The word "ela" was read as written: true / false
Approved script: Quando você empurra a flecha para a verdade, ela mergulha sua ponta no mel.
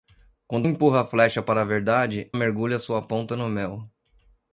false